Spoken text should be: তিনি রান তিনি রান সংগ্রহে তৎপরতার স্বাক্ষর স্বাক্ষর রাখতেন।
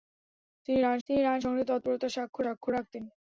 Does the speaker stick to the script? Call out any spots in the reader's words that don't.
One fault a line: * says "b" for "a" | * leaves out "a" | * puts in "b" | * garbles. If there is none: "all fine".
all fine